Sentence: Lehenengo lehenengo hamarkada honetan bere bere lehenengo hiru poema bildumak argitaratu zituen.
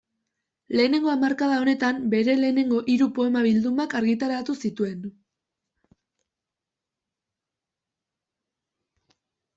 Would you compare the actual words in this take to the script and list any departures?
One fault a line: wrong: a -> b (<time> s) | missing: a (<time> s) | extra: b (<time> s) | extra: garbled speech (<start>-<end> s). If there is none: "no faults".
missing: lehenengo (1.1 s)
missing: bere (2.4 s)